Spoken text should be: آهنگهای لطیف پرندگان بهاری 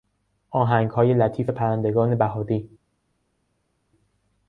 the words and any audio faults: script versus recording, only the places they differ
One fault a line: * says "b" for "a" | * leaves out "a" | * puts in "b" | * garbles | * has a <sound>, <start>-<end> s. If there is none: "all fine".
all fine